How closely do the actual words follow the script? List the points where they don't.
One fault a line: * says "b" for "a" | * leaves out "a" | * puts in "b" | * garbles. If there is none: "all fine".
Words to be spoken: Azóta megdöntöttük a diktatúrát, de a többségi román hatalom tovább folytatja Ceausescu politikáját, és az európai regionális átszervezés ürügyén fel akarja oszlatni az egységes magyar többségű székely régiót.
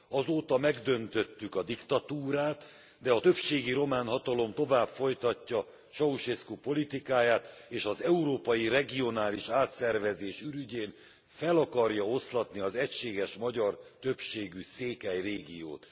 all fine